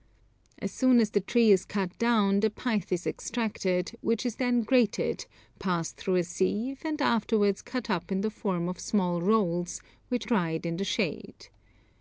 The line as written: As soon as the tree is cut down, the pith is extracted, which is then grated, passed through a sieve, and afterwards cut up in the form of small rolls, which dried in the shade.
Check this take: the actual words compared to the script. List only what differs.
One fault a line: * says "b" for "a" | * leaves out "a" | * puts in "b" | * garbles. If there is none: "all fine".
all fine